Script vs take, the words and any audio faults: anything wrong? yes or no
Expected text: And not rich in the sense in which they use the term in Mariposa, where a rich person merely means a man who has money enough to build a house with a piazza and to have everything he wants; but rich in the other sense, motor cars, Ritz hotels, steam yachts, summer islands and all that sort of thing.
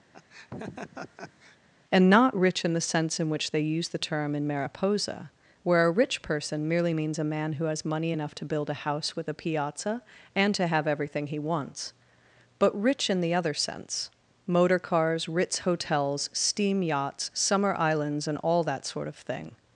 yes